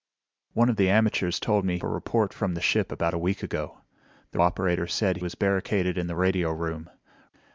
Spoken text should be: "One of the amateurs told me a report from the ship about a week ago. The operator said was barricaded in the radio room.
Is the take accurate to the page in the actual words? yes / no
yes